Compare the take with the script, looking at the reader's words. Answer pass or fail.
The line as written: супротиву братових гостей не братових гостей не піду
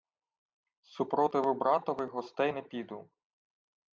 fail